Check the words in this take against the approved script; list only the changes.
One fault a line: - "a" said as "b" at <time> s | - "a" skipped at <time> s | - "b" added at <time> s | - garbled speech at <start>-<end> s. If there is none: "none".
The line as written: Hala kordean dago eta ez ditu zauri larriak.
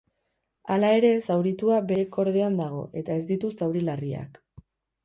- "ere zauritua bere" added at 1.0 s